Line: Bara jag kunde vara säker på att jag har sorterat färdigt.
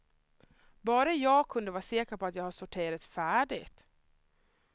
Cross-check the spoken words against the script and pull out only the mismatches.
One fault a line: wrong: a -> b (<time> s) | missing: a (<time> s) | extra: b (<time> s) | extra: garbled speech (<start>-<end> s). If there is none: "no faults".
no faults